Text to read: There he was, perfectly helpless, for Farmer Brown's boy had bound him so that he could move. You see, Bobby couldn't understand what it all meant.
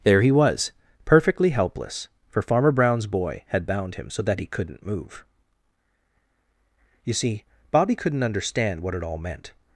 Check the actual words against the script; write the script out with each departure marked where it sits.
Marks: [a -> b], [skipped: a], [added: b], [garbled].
There he was, perfectly helpless, for Farmer Brown's boy had bound him so that he [could -> couldn't] move. You see, Bobby couldn't understand what it all meant.